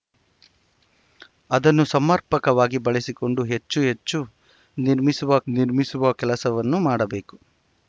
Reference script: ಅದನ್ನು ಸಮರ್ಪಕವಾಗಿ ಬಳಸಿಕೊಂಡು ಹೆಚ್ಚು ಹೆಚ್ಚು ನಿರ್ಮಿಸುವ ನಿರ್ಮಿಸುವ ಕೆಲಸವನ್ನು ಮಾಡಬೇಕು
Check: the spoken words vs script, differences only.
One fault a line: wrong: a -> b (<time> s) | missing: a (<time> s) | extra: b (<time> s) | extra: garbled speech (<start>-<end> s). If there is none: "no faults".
no faults